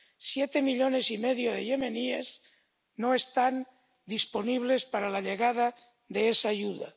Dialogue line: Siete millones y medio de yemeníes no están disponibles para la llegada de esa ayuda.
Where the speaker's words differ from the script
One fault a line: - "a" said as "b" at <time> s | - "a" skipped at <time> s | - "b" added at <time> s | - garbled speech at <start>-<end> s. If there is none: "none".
none